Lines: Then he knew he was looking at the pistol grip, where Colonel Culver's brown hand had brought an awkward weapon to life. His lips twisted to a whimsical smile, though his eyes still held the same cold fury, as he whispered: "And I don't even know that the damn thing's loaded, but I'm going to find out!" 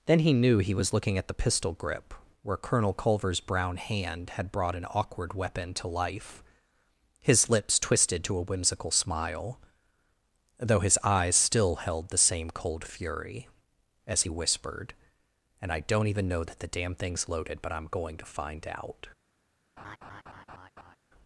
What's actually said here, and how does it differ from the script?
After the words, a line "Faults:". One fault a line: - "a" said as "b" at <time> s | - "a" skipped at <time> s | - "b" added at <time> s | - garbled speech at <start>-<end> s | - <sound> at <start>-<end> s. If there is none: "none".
Then he knew he was looking at the pistol grip, where Colonel Culver's brown hand had brought an awkward weapon to life. His lips twisted to a whimsical smile, though his eyes still held the same cold fury, as he whispered: "And I don't even know that the damn thing's loaded, but I'm going to find out!"
Faults:
- laugh at 19.8-21.0 s